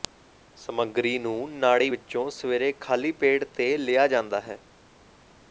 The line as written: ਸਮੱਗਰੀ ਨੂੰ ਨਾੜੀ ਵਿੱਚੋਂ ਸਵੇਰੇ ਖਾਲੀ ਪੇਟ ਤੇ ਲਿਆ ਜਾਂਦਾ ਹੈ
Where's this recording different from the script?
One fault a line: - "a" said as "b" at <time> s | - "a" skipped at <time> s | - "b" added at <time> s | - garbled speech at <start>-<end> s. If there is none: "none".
none